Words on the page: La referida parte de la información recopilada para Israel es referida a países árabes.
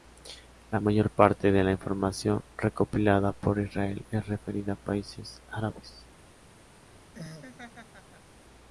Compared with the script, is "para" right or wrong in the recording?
wrong